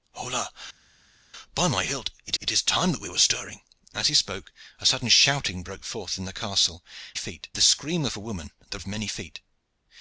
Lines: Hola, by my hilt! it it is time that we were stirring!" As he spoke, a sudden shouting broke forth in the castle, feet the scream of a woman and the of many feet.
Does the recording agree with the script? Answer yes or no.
yes